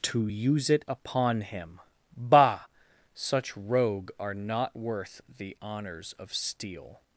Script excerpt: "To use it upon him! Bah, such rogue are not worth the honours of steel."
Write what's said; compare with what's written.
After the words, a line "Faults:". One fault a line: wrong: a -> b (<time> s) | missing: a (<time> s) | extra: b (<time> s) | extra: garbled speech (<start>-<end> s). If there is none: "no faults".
"To use it upon him! Bah, such rogue are not worth the honours of steel."
Faults:
no faults